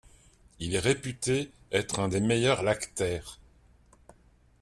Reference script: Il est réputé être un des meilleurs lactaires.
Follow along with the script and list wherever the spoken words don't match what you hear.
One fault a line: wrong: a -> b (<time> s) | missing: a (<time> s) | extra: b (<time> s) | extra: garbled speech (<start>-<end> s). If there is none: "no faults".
no faults